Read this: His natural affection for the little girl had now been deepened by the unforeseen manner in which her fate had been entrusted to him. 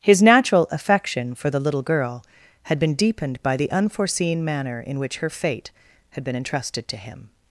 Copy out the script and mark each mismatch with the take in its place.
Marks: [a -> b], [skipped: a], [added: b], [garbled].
His natural affection for the little girl had [skipped: now] been deepened by the unforeseen manner in which her fate had been entrusted to him.